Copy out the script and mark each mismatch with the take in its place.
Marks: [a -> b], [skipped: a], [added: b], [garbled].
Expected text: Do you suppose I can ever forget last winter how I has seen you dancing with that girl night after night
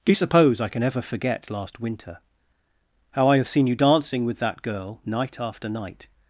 Do you suppose I can ever forget last winter how I [has -> have] seen you dancing with that girl night after night